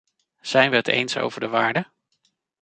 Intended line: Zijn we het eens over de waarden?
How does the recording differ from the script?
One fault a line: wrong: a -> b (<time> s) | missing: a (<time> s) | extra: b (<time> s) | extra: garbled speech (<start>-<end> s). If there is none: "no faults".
no faults